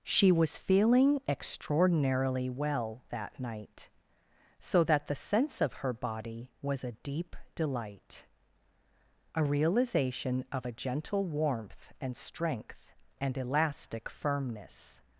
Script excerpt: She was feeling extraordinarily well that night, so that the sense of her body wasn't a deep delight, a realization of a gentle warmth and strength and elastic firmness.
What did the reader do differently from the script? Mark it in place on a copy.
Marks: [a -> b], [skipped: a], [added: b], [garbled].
She was feeling extraordinarily well that night, so that the sense of her body [wasn't -> was] a deep delight, a realization of a gentle warmth and strength and elastic firmness.